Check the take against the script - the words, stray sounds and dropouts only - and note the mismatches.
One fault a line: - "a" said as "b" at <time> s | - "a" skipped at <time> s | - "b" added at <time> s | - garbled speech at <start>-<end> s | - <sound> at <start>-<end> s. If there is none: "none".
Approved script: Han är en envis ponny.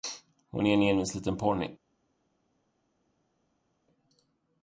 - "Han" said as "Hon" at 0.5 s
- "liten" added at 1.1 s